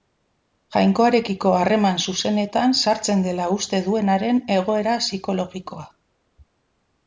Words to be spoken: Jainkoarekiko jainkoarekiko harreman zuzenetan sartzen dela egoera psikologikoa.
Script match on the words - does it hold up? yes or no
no